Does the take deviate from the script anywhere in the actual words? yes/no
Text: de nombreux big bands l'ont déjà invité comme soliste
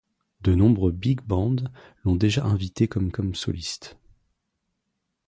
yes